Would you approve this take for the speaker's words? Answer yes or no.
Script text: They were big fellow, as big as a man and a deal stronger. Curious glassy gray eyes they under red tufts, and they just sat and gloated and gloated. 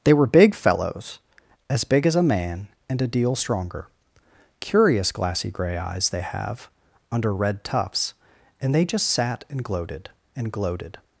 no